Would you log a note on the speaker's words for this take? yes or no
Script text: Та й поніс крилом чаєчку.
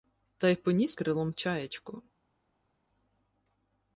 no